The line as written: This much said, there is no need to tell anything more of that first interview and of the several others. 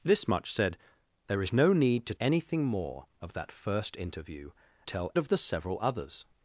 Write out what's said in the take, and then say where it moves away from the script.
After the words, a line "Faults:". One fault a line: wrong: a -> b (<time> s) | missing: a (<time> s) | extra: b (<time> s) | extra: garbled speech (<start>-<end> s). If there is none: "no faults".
This much said, there is no need to anything more of that first interview tell of the several others.
Faults:
missing: tell (2.1 s)
wrong: and -> tell (4.8 s)